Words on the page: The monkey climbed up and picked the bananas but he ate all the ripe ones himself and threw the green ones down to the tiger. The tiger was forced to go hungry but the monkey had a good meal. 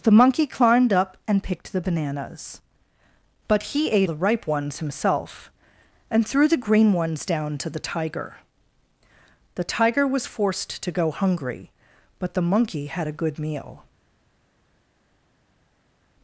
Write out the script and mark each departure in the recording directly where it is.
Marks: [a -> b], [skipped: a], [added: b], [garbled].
The monkey climbed up and picked the bananas but he ate [skipped: all] the ripe ones himself and threw the green ones down to the tiger. The tiger was forced to go hungry but the monkey had a good meal.